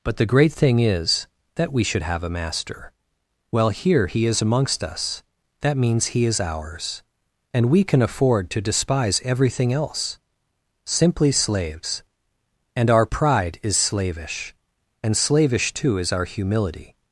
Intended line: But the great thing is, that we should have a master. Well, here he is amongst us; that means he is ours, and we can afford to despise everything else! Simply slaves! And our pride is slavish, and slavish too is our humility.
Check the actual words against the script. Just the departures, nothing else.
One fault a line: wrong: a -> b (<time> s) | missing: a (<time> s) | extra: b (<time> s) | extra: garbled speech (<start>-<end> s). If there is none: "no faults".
no faults